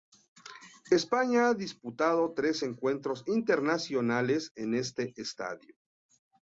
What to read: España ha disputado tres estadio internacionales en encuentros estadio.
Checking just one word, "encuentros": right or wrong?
wrong